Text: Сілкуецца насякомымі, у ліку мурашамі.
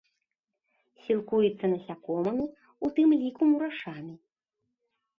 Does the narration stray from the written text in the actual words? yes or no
yes